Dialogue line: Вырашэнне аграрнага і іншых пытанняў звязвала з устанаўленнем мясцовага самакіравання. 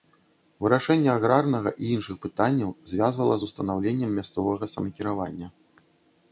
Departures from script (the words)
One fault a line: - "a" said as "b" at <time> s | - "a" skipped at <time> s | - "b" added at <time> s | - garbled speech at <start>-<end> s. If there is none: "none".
none